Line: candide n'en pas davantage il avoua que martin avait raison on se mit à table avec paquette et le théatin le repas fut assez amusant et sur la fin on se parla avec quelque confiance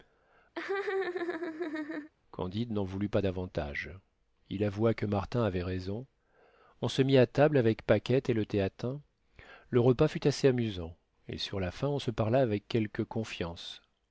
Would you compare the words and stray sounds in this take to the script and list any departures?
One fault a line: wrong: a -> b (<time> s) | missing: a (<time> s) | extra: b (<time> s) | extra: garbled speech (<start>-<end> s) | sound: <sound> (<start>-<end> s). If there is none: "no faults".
sound: laugh (0.6-2.1 s)
extra: voulut (2.9 s)